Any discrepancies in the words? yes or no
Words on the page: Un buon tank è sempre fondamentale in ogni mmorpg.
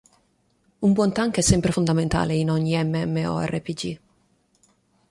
no